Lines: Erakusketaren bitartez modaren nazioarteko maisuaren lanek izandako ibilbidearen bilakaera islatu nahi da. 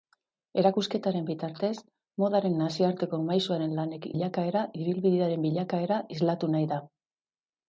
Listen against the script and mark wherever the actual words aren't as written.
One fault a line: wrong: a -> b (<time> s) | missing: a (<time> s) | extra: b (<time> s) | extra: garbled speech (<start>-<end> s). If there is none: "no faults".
wrong: izandako -> bilakaera (4.1 s)